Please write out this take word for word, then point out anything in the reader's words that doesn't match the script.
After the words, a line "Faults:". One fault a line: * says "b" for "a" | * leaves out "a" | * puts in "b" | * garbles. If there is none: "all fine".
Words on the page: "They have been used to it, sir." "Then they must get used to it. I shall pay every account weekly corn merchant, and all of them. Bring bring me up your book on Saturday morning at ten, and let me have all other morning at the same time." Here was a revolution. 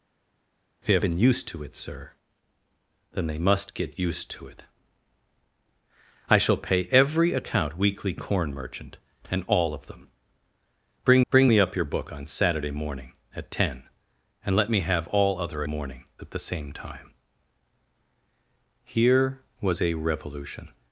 "They have been used to it, sir." "Then they must get used to it. I shall pay every account weekly corn merchant, and all of them. Bring bring me up your book on Saturday morning at ten, and let me have all other morning at the same time." Here was a revolution.
Faults:
all fine